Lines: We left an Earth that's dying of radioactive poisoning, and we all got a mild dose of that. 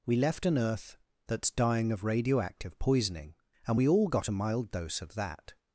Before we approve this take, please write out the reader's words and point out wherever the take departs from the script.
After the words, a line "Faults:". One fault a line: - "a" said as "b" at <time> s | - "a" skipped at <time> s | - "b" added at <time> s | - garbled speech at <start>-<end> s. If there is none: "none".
We left an Earth that's dying of radioactive poisoning, and we all got a mild dose of that.
Faults:
none